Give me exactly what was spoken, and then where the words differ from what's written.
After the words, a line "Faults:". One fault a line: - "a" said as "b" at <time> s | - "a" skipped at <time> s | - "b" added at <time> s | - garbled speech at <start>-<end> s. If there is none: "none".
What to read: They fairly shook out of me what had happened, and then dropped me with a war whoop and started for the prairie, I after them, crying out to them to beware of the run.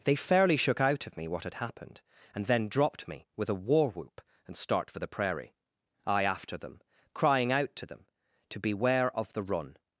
They fairly shook out of me what had happened, and then dropped me with a war whoop and start for the prairie, I after them, crying out to them to beware of the run.
Faults:
- "started" said as "start" at 4.6 s